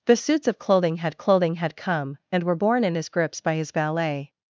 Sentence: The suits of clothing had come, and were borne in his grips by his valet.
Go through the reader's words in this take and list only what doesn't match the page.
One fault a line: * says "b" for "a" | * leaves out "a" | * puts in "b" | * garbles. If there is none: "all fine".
* puts in "clothing had"